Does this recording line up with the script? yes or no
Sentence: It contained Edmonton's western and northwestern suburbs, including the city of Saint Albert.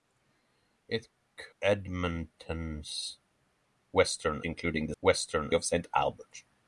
no